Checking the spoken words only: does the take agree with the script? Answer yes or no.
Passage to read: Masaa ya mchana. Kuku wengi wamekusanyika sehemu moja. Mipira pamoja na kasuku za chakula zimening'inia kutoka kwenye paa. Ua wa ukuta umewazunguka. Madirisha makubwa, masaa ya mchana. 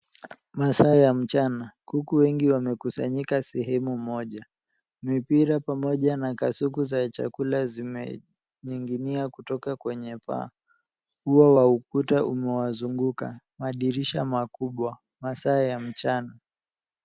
yes